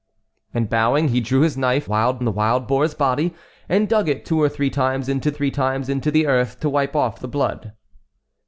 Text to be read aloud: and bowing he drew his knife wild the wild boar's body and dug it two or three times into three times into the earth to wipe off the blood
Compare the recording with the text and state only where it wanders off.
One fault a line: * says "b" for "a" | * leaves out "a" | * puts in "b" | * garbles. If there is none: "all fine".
all fine